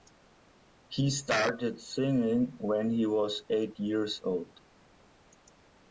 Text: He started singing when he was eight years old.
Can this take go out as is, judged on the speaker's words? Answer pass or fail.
pass